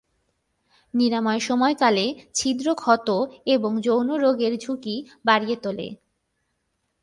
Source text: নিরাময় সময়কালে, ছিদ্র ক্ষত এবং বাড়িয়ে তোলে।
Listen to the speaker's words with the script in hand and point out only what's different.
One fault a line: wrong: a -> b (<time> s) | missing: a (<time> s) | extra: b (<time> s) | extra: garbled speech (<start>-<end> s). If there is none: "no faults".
extra: যৌন রোগের ঝুঁকি (3.8 s)